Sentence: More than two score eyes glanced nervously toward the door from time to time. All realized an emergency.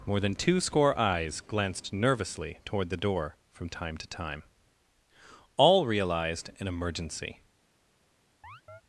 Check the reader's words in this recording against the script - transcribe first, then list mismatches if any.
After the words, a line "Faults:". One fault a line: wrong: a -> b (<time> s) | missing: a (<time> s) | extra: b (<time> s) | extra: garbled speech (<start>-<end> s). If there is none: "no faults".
More than two score eyes glanced nervously toward the door from time to time. All realized an emergency.
Faults:
no faults